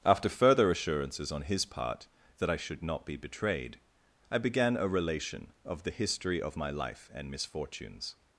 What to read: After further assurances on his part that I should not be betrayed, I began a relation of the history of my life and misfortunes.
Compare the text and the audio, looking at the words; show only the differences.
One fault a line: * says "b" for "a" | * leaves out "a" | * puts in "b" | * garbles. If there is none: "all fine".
all fine